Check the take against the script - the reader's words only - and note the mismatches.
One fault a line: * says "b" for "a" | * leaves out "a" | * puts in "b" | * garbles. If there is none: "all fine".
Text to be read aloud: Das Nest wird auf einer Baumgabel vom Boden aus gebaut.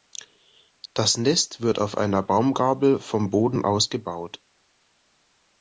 all fine